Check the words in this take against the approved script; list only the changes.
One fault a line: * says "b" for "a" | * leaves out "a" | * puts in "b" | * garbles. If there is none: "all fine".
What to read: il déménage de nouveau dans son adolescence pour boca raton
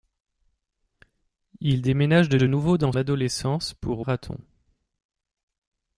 * puts in "de"
* leaves out "son"
* leaves out "boca"